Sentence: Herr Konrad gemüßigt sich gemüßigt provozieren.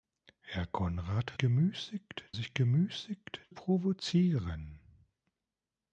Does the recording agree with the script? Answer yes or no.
yes